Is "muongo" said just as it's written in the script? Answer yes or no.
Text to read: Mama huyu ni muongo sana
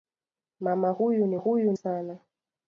no